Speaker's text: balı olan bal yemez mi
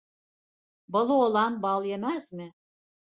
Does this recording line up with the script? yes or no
yes